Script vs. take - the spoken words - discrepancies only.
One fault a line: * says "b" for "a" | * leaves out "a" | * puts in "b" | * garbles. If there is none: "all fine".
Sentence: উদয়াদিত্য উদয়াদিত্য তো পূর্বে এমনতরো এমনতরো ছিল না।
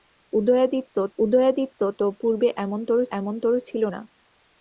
all fine